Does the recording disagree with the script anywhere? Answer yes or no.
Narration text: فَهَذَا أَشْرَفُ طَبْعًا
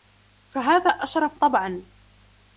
no